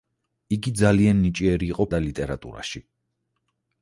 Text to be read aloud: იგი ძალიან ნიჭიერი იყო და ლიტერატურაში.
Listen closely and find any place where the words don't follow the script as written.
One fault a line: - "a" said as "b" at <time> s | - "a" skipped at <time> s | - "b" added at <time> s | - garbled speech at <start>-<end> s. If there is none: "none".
none